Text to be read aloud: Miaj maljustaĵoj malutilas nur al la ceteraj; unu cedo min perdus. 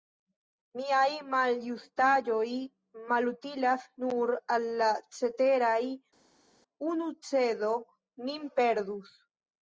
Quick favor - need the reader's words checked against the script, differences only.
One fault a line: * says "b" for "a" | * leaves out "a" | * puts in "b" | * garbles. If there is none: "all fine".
all fine